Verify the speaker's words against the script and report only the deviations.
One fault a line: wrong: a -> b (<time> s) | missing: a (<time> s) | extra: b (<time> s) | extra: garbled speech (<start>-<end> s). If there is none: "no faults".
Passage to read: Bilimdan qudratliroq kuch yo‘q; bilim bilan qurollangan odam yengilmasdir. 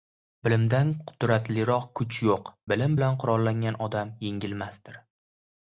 no faults